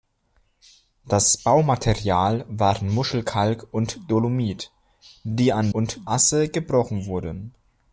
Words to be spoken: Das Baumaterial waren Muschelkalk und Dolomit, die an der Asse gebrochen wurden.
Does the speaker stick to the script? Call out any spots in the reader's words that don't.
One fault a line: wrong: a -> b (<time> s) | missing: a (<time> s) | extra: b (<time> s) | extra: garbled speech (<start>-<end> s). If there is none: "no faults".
wrong: der -> und (5.7 s)